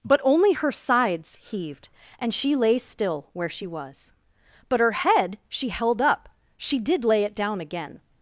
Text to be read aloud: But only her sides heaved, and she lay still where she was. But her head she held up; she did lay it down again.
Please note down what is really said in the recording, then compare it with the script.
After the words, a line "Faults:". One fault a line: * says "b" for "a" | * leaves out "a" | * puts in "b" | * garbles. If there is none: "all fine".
But only her sides heaved, and she lay still where she was. But her head she held up; she did lay it down again.
Faults:
all fine